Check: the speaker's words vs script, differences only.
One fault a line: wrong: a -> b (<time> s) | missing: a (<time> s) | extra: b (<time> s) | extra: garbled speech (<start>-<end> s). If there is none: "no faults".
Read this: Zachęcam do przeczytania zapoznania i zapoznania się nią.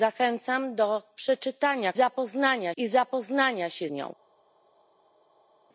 no faults